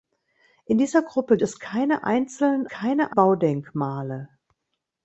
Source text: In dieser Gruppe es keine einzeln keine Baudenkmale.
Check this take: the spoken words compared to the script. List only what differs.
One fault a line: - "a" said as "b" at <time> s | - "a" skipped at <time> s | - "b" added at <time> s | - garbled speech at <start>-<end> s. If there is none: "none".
none